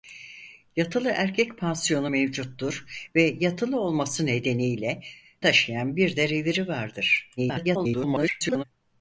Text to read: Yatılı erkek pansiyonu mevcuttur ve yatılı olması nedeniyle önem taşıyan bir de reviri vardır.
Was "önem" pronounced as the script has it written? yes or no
no